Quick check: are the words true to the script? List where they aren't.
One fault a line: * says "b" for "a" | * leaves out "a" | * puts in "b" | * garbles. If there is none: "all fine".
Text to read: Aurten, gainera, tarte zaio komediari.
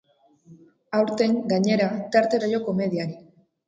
all fine